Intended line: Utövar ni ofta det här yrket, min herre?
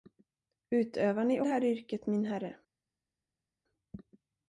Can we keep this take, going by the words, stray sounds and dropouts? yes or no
no